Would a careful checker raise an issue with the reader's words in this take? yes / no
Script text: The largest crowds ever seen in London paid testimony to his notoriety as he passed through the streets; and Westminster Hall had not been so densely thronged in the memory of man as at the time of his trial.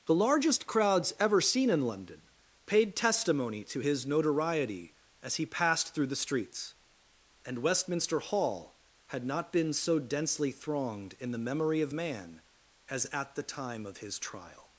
no